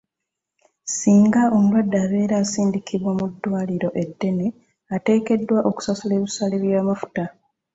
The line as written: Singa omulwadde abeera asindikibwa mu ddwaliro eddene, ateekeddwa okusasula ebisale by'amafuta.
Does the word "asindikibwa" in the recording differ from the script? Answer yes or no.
no